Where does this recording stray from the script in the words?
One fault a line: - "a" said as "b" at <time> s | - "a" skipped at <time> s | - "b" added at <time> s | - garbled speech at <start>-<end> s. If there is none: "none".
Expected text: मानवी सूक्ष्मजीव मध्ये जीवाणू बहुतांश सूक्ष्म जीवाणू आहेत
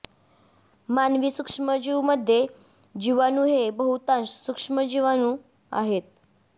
- "हे" added at 3.5 s